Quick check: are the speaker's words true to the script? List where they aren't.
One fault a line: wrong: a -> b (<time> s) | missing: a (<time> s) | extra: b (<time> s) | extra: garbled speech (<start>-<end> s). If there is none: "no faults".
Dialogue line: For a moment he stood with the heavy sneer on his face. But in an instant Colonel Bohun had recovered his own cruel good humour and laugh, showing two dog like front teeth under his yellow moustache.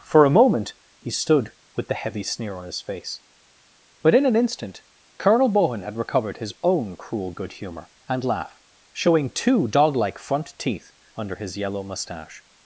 no faults